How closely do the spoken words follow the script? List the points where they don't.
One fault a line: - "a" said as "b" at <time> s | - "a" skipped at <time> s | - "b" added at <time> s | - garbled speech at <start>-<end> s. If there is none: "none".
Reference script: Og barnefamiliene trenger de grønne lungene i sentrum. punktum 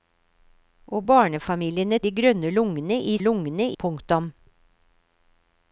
- "trenger" skipped at 2.0 s
- "sentrum" said as "lungene" at 3.2 s